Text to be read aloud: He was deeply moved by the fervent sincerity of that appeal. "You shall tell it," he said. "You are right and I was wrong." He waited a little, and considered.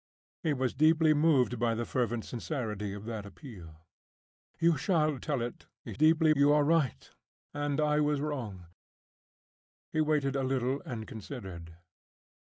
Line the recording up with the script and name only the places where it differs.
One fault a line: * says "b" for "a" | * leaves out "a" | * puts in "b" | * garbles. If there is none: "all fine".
* says "deeply" for "said"